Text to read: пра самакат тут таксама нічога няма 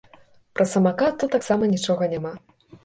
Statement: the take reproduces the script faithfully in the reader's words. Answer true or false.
true